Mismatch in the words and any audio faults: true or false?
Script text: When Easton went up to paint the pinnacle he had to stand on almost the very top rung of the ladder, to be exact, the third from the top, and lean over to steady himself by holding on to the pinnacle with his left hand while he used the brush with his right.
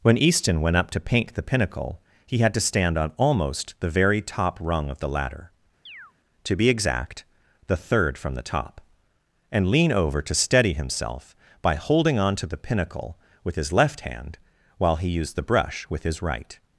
true